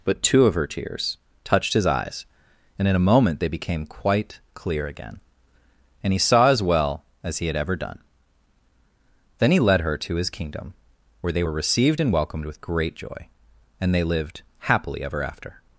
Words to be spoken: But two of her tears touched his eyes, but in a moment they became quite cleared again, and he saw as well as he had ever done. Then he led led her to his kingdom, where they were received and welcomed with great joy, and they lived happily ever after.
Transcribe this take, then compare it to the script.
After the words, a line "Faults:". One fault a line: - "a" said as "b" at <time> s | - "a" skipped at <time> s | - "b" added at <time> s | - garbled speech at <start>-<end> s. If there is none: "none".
But two of her tears touched his eyes, and in a moment they became quite clear again, and he saw as well as he had ever done. Then he led her to his kingdom, where they were received and welcomed with great joy, and they lived happily ever after.
Faults:
- "but" said as "and" at 2.8 s
- "cleared" said as "clear" at 4.5 s
- "led" skipped at 9.8 s